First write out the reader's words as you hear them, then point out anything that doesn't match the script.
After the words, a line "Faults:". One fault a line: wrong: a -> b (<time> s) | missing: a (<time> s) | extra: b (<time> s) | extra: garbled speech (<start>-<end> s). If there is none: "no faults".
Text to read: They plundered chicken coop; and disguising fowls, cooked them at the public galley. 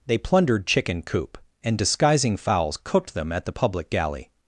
They plundered chicken coop; and disguising fowls, cooked them at the public galley.
Faults:
no faults